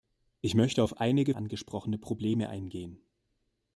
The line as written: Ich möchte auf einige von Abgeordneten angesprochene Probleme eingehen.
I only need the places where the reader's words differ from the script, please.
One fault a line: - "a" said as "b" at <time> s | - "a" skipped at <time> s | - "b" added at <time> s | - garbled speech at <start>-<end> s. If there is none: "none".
- "von Abgeordneten" skipped at 1.3 s